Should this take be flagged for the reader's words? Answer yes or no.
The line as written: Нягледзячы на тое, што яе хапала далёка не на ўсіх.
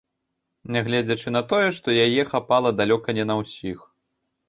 no